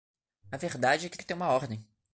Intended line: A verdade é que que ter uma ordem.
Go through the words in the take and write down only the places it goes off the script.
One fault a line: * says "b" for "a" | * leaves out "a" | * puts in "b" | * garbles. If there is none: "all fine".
all fine